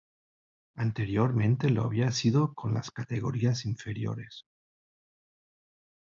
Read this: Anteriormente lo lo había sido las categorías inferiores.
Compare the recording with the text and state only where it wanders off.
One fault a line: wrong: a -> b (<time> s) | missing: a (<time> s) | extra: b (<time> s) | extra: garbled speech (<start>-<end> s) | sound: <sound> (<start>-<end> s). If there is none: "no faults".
missing: lo (1.8 s)
extra: con (2.5 s)